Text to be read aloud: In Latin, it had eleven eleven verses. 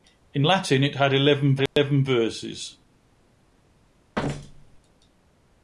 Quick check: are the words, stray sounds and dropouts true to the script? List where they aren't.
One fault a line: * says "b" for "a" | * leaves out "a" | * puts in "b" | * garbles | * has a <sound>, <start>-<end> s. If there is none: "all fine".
* has a dropout, 1.7-1.8 s
* has a thud, 4.1-4.8 s